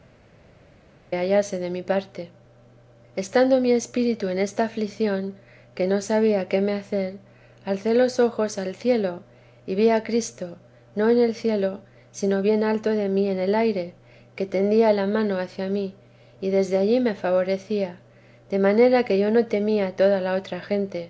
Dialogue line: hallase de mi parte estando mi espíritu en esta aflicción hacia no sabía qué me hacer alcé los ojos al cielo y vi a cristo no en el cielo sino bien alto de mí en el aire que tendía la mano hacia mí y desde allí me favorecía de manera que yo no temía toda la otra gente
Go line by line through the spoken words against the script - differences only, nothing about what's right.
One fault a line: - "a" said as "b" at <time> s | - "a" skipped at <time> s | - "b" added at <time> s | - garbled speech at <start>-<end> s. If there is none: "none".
- "hacia" said as "que" at 5.8 s